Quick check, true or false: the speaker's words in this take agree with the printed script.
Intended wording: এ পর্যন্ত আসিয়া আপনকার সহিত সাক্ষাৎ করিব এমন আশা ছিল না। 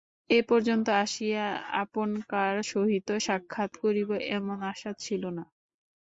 true